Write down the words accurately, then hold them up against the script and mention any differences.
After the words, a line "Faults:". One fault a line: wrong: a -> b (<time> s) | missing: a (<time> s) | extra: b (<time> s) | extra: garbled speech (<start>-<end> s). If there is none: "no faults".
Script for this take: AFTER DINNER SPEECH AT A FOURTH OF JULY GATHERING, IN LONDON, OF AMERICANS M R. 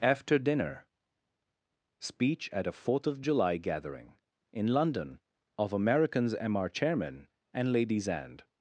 AFTER DINNER SPEECH AT A FOURTH OF JULY GATHERING, IN LONDON, OF AMERICANS M R. CHAIRMAN AND LADIES AND
Faults:
extra: CHAIRMAN AND LADIES AND (6.7 s)